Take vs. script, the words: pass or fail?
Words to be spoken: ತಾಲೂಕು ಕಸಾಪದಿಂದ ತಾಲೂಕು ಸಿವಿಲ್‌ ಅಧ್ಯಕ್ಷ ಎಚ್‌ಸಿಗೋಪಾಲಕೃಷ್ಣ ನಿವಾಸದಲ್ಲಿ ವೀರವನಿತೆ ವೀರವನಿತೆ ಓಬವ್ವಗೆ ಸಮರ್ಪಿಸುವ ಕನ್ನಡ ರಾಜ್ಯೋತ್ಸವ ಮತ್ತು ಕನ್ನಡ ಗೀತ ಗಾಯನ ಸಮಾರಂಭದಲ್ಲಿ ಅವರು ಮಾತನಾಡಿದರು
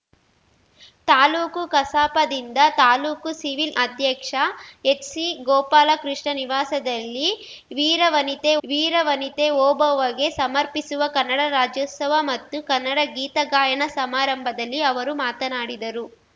pass